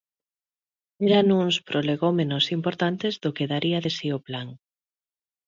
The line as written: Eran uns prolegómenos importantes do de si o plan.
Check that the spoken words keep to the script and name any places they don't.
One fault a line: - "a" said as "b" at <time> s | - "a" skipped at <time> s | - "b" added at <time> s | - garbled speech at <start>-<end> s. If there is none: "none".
- "que daría" added at 3.4 s